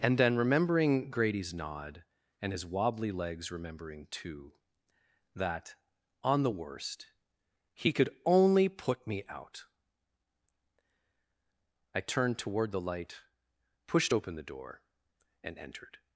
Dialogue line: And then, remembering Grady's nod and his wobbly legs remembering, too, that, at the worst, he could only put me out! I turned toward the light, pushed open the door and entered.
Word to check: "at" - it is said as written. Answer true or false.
false